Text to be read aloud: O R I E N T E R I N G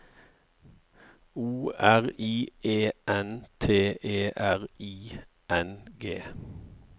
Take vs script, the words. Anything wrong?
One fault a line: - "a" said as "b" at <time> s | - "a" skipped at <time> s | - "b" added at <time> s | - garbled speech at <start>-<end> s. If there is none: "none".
none